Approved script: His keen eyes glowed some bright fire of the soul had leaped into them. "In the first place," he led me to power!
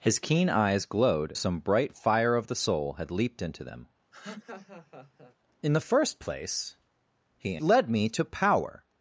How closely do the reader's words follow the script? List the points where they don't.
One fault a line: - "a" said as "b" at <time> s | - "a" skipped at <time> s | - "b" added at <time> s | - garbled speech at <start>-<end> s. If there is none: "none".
none